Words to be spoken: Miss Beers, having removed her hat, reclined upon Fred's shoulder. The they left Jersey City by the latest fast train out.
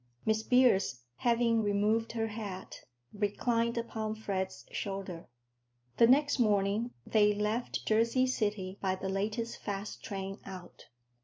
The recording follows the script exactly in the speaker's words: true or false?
false